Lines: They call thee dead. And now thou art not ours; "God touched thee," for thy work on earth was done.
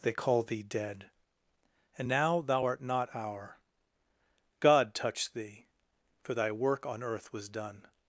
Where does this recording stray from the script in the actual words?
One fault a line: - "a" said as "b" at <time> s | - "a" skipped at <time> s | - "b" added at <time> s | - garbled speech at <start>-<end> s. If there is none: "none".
- "ours" said as "our" at 3.1 s